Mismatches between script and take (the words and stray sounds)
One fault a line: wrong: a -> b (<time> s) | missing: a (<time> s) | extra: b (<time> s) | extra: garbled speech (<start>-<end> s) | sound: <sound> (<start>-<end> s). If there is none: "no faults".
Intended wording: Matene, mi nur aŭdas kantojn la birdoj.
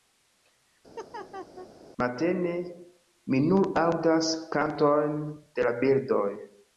sound: laugh (1.0-1.7 s)
extra: de (5.4 s)